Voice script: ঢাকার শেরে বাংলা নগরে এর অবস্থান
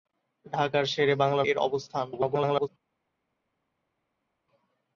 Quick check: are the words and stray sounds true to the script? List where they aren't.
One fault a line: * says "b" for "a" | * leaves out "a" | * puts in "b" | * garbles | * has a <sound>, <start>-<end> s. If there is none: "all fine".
* leaves out "নগরে"
* garbles